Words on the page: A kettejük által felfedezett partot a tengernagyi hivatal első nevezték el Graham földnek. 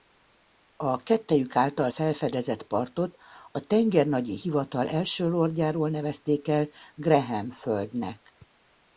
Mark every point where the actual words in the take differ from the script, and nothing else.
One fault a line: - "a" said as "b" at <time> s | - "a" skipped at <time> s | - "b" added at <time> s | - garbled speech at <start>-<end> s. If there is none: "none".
- "lordjáról" added at 5.3 s